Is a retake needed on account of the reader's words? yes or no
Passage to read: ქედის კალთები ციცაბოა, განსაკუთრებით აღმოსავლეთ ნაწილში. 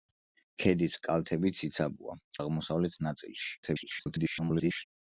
yes